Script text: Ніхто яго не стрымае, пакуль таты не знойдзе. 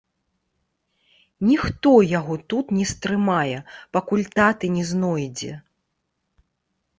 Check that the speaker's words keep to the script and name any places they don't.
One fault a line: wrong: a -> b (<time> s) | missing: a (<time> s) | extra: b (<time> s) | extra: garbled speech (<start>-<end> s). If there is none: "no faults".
extra: тут (2.5 s)